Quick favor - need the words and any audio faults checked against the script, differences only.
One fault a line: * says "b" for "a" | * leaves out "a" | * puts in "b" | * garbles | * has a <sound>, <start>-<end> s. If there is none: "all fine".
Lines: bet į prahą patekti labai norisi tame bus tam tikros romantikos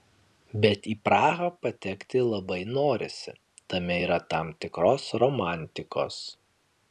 * says "yra" for "bus"